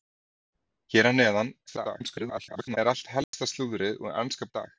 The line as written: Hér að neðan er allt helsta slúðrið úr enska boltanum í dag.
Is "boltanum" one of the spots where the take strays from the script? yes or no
yes